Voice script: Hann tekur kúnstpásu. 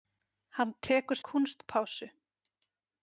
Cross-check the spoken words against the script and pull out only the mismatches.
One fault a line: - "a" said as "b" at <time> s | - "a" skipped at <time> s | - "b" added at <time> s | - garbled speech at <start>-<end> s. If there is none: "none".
none